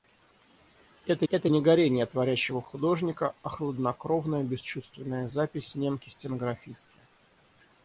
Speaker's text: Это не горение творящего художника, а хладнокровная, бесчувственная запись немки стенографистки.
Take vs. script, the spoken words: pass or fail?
fail